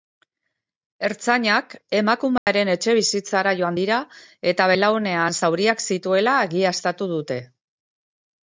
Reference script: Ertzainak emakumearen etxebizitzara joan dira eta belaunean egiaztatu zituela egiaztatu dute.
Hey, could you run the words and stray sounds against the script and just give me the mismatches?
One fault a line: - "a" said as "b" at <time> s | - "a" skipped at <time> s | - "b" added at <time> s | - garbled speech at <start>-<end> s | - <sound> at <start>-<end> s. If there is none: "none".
- dropout at 2.4-2.5 s
- "egiaztatu" said as "zauriak" at 5.4 s